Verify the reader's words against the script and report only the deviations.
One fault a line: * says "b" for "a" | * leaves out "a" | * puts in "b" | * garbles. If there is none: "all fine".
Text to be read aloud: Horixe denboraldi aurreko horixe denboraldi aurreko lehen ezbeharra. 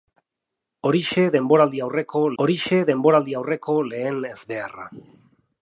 all fine